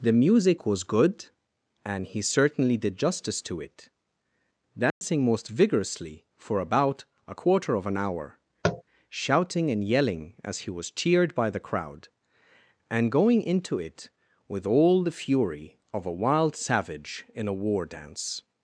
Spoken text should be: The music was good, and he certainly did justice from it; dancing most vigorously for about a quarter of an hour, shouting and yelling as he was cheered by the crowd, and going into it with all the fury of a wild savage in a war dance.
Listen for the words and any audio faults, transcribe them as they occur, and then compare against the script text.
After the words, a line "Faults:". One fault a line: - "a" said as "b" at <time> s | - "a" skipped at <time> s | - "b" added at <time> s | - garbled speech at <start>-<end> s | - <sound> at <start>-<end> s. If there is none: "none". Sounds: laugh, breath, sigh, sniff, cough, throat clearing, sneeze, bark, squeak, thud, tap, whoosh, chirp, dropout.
The music was good, and he certainly did justice to it; dancing most vigorously for about a quarter of an hour, shouting and yelling as he was cheered by the crowd, and going into it with all the fury of a wild savage in a war dance.
Faults:
- "from" said as "to" at 3.4 s
- dropout at 4.9-5.0 s
- tap at 8.6-8.8 s